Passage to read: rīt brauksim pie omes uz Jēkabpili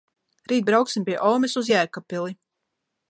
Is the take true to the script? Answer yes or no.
yes